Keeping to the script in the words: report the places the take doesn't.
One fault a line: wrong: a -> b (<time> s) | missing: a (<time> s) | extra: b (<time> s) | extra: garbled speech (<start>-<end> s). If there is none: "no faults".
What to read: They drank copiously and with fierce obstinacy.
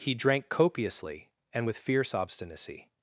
wrong: They -> He (0.0 s)